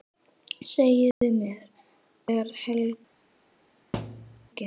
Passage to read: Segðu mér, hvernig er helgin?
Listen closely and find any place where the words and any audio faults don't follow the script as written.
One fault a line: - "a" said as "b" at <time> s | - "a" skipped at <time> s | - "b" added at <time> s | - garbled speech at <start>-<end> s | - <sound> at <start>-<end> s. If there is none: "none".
- dropout at 1.1-1.2 s
- "hvernig" skipped at 1.6 s
- thud at 3.9-4.5 s